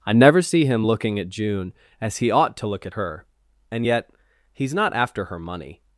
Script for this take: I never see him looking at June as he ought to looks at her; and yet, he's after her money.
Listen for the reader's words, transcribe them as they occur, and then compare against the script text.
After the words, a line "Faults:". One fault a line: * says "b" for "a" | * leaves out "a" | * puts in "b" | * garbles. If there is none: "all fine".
I never see him looking at June as he ought to look at her; and yet, he's not after her money.
Faults:
* says "look" for "looks"
* puts in "not"